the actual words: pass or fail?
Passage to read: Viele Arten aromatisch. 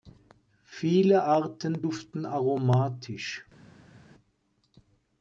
fail